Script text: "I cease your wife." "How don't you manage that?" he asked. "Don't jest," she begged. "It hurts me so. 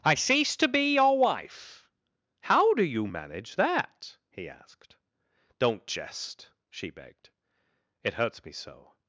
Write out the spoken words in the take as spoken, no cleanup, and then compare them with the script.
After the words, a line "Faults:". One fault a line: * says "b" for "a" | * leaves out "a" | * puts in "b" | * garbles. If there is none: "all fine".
"I cease to be your wife." "How do you manage that?" he asked. "Don't jest," she begged. "It hurts me so.
Faults:
* puts in "to be"
* says "do" for "don't"